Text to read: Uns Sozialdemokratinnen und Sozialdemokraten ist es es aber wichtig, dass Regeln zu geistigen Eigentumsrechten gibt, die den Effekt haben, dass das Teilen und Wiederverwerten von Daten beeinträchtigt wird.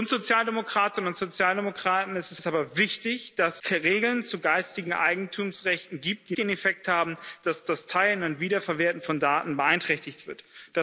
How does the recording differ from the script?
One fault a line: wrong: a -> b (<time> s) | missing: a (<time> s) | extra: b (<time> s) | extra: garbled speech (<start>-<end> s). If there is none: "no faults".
no faults